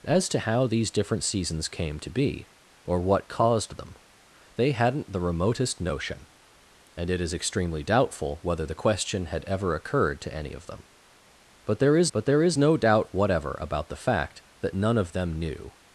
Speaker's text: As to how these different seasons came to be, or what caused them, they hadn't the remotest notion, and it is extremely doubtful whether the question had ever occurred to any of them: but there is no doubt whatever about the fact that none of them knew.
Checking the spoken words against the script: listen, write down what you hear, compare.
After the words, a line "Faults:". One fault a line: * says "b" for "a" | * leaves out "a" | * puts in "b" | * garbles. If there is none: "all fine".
As to how these different seasons came to be, or what caused them, they hadn't the remotest notion, and it is extremely doubtful whether the question had ever occurred to any of them: but there is but there is no doubt whatever about the fact that none of them knew.
Faults:
* puts in "but there is"